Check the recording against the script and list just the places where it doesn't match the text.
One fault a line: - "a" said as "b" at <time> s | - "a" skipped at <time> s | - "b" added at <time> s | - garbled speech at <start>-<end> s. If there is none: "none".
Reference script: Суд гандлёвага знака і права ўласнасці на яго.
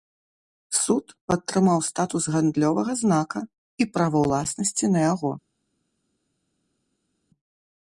- "падтрымаў статус" added at 1.3 s